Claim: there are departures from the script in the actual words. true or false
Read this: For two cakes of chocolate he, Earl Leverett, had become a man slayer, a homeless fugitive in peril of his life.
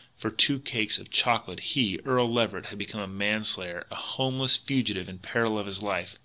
false